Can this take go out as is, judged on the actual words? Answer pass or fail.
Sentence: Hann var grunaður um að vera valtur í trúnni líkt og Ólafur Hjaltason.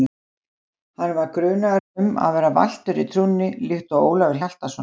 pass